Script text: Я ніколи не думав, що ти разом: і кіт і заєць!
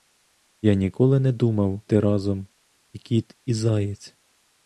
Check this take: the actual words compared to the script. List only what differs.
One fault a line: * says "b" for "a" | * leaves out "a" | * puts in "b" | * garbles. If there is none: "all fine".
* leaves out "що"